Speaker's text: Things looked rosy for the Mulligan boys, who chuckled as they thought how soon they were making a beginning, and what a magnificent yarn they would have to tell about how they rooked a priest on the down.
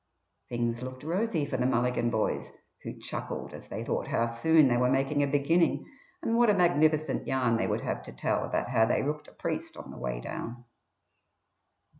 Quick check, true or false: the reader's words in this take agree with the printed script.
false